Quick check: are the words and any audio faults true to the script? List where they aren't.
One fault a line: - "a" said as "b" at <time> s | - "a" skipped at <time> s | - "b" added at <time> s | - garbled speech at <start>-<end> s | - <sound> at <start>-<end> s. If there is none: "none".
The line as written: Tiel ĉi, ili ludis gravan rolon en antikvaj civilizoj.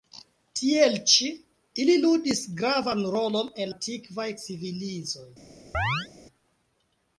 - chirp at 5.7-6.1 s